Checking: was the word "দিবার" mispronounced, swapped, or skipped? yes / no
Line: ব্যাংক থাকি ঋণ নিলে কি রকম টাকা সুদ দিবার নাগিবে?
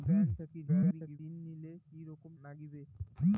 yes